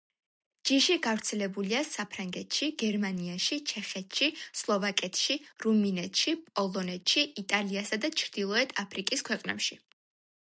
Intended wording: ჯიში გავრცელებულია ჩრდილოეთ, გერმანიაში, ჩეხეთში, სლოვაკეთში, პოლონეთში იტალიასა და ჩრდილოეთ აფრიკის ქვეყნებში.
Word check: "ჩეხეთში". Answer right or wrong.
right